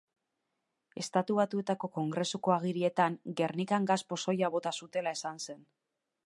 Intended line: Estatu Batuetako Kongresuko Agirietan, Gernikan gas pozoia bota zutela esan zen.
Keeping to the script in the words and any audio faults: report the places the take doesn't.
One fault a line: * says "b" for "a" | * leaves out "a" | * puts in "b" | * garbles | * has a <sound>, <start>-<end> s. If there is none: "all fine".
all fine